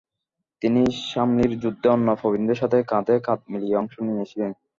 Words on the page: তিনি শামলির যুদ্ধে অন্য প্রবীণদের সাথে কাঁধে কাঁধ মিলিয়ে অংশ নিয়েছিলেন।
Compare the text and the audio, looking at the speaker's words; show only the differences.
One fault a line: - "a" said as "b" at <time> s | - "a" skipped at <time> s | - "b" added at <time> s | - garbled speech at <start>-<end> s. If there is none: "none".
none